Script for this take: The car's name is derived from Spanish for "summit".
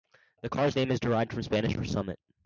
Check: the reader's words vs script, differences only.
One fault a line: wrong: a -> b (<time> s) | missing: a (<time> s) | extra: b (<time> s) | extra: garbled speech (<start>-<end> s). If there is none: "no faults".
no faults